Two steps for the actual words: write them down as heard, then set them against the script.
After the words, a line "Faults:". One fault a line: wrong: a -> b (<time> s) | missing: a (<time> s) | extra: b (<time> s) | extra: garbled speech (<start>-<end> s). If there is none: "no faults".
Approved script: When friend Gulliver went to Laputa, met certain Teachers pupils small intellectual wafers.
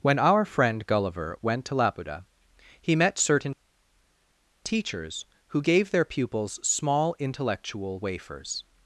When our friend Gulliver went to Laputa, he met certain Teachers who gave their pupils small intellectual wafers.
Faults:
extra: our (0.2 s)
extra: he (2.8 s)
extra: who gave their (5.5 s)